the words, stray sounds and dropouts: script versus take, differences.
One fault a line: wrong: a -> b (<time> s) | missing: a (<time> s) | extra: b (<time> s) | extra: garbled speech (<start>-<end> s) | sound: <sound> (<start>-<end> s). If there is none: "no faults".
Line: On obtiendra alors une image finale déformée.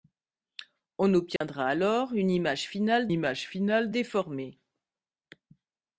sound: dropout (1.4-1.4 s)
extra: image finale (3.1 s)